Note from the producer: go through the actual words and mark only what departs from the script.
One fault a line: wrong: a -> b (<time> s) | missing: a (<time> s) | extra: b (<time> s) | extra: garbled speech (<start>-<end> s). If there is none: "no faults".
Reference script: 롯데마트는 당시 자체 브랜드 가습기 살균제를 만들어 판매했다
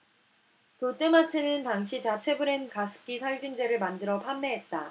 no faults